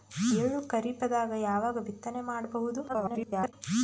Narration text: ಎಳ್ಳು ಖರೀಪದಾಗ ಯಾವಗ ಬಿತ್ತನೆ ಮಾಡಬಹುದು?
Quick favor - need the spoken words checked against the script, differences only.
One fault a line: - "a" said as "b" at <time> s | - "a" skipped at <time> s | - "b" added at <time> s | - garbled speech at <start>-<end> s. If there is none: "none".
- garbled speech at 2.9-3.5 s